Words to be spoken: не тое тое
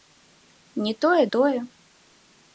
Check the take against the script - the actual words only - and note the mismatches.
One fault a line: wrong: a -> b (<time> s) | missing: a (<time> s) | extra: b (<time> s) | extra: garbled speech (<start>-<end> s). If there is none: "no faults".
no faults